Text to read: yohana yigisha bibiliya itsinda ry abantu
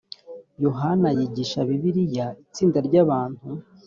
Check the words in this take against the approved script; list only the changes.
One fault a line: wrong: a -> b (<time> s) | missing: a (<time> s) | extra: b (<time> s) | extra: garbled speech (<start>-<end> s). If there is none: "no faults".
no faults